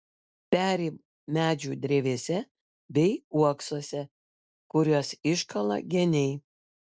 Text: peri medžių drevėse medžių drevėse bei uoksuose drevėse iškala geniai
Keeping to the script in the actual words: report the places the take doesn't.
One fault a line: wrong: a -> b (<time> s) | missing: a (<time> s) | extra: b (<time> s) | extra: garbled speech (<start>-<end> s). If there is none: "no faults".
missing: medžių drevėse (2.4 s)
wrong: drevėse -> kuriuos (4.8 s)